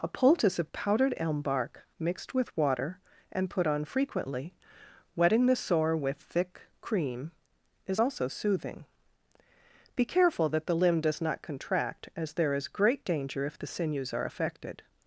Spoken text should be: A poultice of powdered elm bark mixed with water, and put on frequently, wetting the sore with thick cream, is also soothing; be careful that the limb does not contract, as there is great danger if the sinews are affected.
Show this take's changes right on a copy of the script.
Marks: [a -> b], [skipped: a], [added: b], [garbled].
A poultice of powdered elm bark mixed with water, and put on frequently, wetting the sore with thick cream, is also soothing; be careful that the limb does not contract, as there is great danger if the sinews are affected.